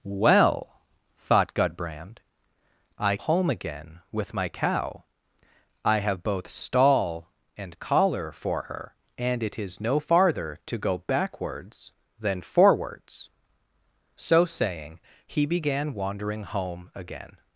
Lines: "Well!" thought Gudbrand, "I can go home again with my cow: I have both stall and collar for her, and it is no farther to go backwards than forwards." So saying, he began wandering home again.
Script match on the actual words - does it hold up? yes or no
no